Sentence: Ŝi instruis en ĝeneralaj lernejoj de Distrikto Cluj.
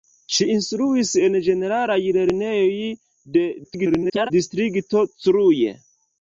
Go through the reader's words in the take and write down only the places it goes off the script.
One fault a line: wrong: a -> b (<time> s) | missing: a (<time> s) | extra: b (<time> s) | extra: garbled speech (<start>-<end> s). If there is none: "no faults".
extra: garbled speech (3.6-4.3 s)